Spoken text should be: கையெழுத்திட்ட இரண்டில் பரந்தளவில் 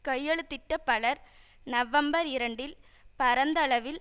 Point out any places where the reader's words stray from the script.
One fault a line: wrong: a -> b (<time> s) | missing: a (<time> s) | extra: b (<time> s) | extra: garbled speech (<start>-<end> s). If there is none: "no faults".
extra: பலர் நவம்பர் (0.8 s)